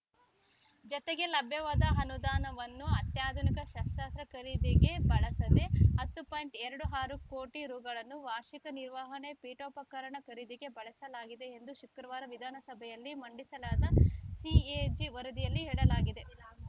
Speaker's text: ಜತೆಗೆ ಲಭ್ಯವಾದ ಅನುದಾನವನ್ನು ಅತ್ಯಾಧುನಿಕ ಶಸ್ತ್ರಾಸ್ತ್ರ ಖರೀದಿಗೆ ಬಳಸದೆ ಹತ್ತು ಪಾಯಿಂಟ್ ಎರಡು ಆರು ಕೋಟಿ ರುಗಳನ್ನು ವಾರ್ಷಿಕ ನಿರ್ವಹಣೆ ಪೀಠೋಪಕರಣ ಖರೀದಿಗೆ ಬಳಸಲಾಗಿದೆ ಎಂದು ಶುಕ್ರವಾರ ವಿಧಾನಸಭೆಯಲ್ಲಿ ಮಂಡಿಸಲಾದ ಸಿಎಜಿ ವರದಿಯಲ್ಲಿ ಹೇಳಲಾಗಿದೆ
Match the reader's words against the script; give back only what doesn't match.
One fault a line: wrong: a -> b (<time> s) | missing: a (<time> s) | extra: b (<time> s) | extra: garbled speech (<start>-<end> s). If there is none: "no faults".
no faults